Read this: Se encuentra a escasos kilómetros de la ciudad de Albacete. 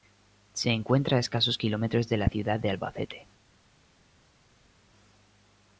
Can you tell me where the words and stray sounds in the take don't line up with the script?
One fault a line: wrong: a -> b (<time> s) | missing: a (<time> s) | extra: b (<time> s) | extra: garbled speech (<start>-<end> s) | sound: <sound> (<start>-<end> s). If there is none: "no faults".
no faults